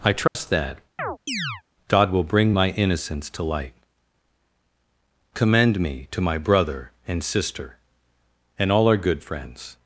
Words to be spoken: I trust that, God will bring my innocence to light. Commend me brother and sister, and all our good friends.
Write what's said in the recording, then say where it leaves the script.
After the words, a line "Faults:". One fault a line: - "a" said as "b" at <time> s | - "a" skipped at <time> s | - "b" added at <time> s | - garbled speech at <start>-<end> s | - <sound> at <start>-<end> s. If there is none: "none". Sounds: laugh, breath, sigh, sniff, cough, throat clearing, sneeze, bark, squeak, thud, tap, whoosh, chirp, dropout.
I trust that, God will bring my innocence to light. Commend me to my brother and sister, and all our good friends.
Faults:
- dropout at 0.3-0.4 s
- chirp at 1.0-1.6 s
- "to my" added at 6.1 s